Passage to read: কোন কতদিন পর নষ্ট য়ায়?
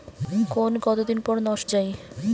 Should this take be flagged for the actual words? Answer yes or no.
no